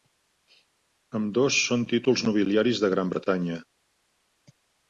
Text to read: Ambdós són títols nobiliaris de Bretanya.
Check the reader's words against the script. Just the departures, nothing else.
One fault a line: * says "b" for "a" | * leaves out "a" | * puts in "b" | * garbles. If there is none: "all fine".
* puts in "Gran"